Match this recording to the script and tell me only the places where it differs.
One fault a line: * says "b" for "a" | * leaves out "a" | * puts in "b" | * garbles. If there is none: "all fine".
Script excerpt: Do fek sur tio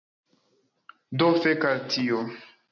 * says "al" for "sur"